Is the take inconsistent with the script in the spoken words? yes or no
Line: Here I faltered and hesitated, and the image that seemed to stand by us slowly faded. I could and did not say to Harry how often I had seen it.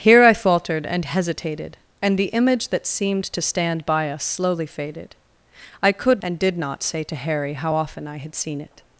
no